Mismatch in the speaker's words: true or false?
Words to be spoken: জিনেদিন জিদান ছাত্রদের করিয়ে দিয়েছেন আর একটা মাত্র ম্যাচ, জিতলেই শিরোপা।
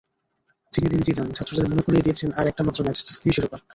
true